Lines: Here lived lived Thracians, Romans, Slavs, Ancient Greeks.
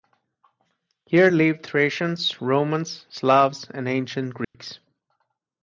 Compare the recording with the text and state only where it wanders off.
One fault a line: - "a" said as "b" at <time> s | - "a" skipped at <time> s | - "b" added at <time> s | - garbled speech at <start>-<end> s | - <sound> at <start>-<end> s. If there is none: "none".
- "lived" skipped at 1.7 s
- "and" added at 3.7 s
- dropout at 4.4-4.5 s